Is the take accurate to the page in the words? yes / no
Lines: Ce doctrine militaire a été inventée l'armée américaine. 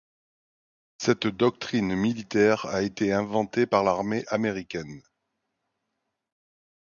no